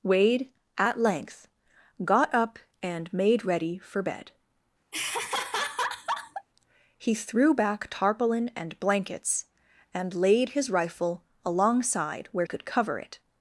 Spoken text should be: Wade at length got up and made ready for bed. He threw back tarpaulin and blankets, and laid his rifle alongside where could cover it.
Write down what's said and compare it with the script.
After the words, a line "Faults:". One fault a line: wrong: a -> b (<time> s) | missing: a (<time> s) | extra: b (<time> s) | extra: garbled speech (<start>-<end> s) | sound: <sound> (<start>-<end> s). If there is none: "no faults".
Wade at length got up and made ready for bed. He threw back tarpaulin and blankets, and laid his rifle alongside where could cover it.
Faults:
sound: laugh (4.9-6.5 s)